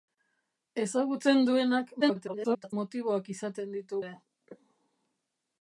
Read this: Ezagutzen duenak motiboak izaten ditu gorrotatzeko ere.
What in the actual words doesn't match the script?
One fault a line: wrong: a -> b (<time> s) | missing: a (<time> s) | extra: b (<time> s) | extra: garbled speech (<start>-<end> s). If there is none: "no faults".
extra: garbled speech (2.0-2.7 s)
missing: gorrotatzeko (4.0 s)